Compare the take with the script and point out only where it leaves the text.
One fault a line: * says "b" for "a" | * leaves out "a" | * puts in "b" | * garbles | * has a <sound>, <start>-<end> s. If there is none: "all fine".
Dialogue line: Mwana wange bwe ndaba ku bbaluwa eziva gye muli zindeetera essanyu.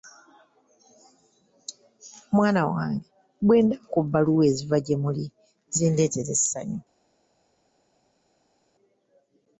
all fine